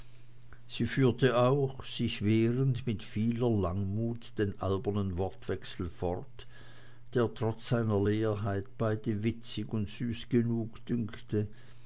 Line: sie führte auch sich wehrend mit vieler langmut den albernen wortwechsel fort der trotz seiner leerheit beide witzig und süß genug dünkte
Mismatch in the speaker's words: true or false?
false